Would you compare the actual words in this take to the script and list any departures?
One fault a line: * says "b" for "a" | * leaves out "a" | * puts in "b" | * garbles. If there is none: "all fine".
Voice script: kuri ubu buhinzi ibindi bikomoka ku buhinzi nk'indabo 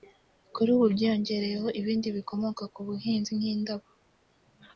* says "byiyongereyeho" for "buhinzi"